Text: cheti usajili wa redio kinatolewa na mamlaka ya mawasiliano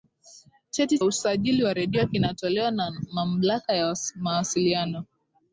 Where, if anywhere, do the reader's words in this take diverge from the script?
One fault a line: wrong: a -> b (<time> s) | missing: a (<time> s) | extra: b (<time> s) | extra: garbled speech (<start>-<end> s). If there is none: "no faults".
no faults